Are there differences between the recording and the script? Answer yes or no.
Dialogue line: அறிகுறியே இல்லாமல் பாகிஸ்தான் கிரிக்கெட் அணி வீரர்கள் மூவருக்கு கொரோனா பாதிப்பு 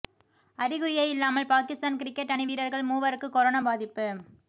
no